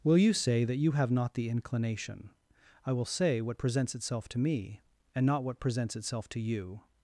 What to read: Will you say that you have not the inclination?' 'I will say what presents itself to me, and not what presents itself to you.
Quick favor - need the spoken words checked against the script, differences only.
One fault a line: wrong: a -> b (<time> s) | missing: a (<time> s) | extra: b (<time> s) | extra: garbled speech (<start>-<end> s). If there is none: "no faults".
no faults